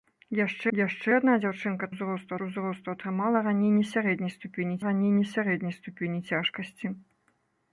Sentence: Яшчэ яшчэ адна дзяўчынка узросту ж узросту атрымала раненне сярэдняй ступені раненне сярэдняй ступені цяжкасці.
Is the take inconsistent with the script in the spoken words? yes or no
no